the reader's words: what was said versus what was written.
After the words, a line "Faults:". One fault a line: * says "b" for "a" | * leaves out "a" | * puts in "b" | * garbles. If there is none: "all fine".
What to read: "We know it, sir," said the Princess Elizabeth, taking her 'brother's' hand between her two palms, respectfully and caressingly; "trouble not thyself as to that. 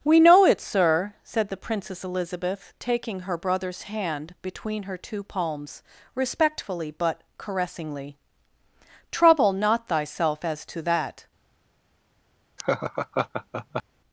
"We know it, sir," said the Princess Elizabeth, taking her 'brother's' hand between her two palms, respectfully but caressingly; "trouble not thyself as to that.
Faults:
* says "but" for "and"